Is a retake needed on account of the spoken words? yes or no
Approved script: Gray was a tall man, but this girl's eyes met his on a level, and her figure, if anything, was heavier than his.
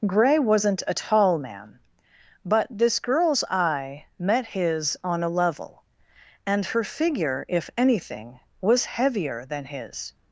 yes